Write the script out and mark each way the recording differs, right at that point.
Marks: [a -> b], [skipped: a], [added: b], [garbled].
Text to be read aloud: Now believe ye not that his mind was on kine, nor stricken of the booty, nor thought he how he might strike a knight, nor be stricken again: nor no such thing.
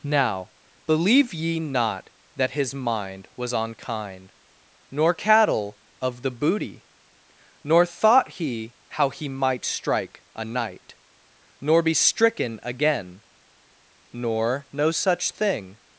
Now believe ye not that his mind was on kine, nor [stricken -> cattle] of the booty, nor thought he how he might strike a knight, nor be stricken again: nor no such thing.